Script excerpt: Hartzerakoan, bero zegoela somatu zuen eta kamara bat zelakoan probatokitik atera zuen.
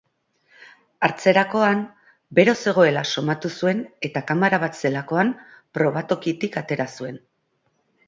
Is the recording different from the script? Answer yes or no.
no